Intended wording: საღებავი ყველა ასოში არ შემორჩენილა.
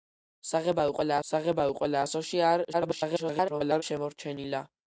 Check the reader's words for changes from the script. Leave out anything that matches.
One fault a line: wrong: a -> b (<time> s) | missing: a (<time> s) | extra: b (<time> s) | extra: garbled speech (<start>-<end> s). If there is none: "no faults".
extra: საღებავი ყველა (1.3 s)
extra: garbled speech (2.7-3.8 s)